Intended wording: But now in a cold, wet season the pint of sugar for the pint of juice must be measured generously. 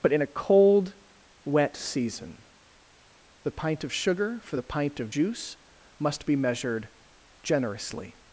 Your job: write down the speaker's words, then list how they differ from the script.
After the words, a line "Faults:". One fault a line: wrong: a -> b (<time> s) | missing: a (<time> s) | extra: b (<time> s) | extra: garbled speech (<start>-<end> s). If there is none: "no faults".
But in a cold, wet season the pint of sugar for the pint of juice must be measured generously.
Faults:
missing: now (0.1 s)